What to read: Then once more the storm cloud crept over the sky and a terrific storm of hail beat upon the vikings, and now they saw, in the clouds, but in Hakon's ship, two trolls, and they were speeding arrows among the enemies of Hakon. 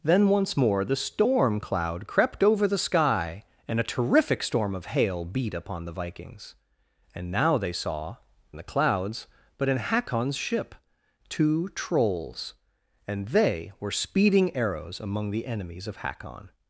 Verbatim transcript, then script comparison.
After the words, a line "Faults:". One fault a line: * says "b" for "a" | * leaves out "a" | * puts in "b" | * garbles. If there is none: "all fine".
Then once more the storm cloud crept over the sky and a terrific storm of hail beat upon the vikings, and now they saw, in the clouds, but in Hakon's ship, two trolls, and they were speeding arrows among the enemies of Hakon.
Faults:
all fine